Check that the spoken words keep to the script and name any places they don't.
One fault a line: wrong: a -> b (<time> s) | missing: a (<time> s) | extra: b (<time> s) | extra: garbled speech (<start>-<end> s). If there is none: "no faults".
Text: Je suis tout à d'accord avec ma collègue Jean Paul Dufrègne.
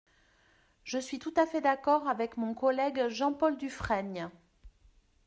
extra: fait (1.4 s)
wrong: ma -> mon (2.4 s)